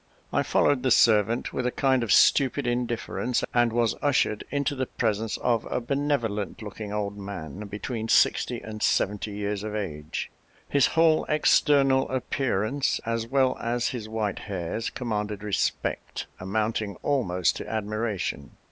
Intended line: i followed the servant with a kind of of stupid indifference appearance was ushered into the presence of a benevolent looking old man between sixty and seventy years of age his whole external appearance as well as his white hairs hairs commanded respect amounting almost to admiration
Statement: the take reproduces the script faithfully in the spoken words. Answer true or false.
false